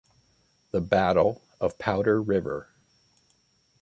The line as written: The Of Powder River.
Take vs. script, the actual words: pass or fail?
fail